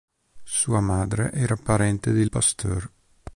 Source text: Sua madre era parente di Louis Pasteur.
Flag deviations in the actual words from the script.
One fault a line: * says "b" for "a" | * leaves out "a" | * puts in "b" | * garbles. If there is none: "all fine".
* leaves out "Louis"